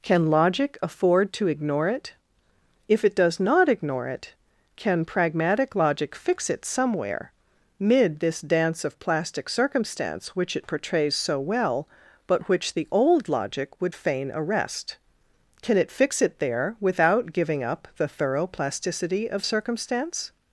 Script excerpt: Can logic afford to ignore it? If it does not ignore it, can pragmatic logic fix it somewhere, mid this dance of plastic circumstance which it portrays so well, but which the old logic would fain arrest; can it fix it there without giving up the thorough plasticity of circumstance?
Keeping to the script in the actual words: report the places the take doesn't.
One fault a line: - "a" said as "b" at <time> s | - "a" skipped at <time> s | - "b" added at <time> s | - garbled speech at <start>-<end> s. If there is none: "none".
none